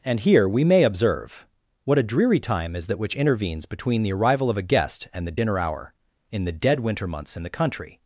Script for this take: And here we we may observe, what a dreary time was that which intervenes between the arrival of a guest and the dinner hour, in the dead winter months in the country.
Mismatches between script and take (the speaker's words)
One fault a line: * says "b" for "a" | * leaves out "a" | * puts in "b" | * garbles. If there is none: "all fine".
* leaves out "we"
* says "is" for "was"